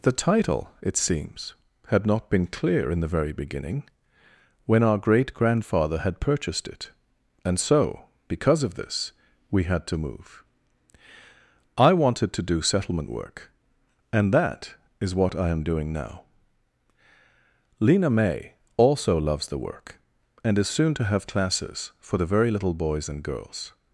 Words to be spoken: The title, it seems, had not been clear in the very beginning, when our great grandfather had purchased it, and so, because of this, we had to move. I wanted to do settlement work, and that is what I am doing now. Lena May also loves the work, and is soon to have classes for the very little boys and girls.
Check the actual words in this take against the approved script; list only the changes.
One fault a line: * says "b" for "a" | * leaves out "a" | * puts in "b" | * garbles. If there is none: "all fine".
all fine